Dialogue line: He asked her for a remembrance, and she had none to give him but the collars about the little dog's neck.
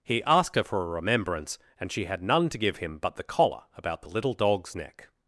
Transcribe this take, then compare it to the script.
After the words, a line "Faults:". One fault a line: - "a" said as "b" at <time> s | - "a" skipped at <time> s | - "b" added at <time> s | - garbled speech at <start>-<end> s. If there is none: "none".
He asked her for a remembrance, and she had none to give him but the collar about the little dog's neck.
Faults:
- "collars" said as "collar" at 3.2 s